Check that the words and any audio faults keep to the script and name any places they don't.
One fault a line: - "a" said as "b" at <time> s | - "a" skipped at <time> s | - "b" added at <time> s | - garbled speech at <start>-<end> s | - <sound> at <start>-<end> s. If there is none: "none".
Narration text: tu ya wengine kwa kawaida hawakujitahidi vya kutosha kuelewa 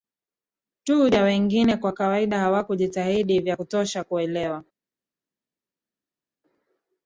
none